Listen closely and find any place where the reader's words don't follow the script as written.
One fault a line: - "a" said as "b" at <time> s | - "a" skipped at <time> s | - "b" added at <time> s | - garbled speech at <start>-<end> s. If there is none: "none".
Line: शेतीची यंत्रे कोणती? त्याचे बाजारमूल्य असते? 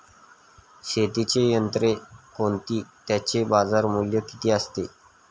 - "किती" added at 4.2 s